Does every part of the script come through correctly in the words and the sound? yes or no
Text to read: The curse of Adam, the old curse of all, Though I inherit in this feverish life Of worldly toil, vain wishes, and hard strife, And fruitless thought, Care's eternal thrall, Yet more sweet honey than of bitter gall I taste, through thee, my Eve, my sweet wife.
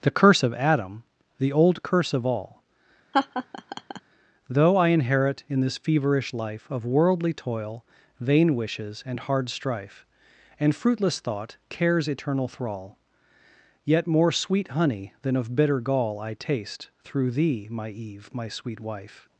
no